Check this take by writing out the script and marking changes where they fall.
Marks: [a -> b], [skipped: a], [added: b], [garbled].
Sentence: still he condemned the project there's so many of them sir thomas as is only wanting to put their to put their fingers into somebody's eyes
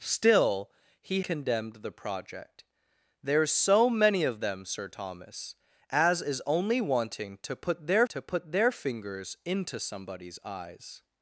still he condemned the project there's so many of them sir thomas as is only wanting to put their to put their fingers into somebody's eyes